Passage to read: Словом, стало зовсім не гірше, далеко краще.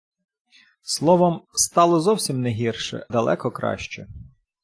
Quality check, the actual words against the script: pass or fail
pass